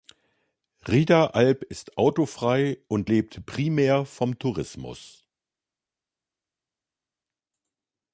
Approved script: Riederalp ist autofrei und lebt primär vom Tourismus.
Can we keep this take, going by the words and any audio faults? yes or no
yes